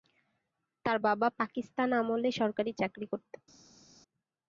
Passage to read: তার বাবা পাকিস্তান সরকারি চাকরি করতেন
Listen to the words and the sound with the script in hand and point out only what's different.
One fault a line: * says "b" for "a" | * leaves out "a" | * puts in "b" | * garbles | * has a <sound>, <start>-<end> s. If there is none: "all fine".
* puts in "আমলে"